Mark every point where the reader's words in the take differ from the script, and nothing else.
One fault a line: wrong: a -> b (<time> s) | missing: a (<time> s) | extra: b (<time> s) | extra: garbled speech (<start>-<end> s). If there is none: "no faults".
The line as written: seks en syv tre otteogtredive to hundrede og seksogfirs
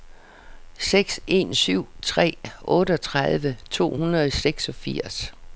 no faults